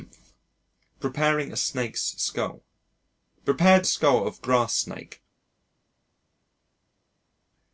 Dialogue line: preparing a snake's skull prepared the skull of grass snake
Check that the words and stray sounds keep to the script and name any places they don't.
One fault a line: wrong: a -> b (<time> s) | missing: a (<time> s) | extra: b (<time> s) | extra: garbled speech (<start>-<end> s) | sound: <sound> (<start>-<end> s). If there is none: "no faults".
no faults